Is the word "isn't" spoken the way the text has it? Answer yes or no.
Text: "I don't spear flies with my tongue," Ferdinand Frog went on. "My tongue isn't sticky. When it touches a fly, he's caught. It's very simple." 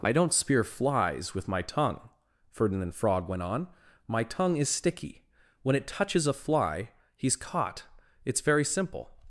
no